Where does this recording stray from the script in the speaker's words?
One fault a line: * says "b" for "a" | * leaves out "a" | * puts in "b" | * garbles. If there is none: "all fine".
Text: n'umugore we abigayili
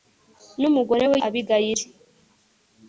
all fine